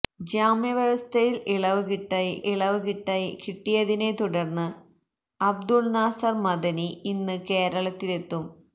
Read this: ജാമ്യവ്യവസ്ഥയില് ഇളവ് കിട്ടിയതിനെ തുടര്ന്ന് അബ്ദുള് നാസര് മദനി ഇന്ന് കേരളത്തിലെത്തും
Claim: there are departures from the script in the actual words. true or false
true